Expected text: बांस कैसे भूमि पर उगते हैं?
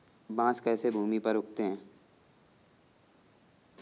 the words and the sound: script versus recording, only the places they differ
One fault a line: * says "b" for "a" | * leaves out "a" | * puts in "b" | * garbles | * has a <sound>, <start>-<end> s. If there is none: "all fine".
all fine